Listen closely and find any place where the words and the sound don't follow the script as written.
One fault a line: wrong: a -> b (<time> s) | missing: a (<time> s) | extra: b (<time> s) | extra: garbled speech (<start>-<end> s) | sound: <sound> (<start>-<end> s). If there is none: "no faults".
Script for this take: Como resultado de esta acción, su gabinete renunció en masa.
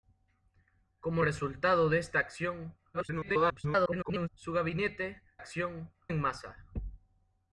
extra: garbled speech (2.9-4.3 s)
wrong: renunció -> acción (5.4 s)